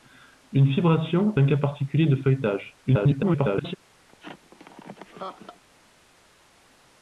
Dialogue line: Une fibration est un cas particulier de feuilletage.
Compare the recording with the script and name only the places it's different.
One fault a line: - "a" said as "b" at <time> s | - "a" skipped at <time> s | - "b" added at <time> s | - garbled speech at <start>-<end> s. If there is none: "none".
- "est" skipped at 1.4 s
- garbled speech at 2.9-3.8 s